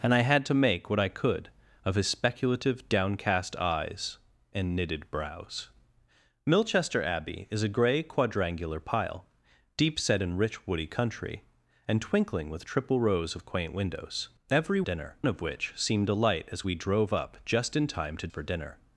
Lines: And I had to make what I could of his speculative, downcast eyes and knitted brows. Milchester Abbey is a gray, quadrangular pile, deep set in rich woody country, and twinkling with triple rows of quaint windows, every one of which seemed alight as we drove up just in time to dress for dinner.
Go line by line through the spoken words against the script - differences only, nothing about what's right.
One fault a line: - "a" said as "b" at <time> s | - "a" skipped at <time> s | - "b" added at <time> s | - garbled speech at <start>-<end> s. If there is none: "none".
- "one" said as "dinner" at 14.8 s
- "dress" skipped at 18.3 s